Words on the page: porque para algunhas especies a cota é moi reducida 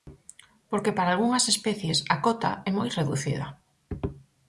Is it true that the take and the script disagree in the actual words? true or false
false